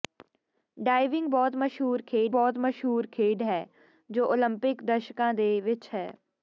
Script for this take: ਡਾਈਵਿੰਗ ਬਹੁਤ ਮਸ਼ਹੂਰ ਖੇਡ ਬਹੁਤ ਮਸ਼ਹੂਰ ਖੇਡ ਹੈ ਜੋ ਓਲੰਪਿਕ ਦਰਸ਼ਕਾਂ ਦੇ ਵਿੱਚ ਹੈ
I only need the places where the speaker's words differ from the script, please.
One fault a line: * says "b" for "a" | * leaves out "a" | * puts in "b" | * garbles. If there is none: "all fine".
all fine